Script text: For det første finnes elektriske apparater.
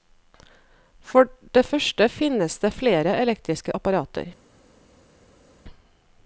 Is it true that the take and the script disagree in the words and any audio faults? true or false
true